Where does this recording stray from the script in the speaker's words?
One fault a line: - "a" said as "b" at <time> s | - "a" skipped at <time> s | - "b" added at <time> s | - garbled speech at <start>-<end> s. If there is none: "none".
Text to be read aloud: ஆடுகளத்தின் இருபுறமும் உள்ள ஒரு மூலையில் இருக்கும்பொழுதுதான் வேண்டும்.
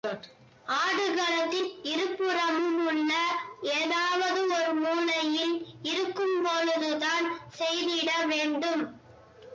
- "ஏதாவது" added at 3.7 s
- "செய்திட" added at 7.6 s